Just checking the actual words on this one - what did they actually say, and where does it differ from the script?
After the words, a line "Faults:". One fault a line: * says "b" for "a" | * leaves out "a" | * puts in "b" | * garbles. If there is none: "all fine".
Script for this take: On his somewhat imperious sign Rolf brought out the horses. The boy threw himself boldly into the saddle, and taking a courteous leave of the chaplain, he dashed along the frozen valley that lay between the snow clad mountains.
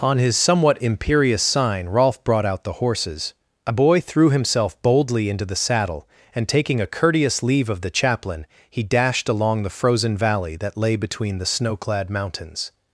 On his somewhat imperious sign Rolf brought out the horses. A boy threw himself boldly into the saddle, and taking a courteous leave of the chaplain, he dashed along the frozen valley that lay between the snow clad mountains.
Faults:
* says "A" for "The"